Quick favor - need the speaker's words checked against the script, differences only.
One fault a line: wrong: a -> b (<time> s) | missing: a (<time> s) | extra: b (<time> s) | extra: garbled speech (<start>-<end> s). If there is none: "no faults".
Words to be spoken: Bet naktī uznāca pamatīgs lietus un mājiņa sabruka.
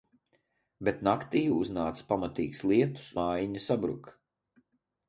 missing: un (3.1 s)